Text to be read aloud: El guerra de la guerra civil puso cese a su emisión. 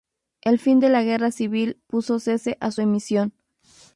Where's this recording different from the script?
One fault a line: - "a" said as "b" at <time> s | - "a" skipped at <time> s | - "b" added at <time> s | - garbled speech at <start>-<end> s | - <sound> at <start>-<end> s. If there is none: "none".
- "guerra" said as "fin" at 0.6 s